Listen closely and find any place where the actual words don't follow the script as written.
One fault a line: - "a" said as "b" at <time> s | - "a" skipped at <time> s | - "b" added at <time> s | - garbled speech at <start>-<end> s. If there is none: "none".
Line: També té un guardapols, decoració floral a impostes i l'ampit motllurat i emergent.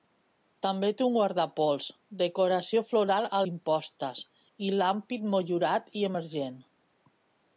none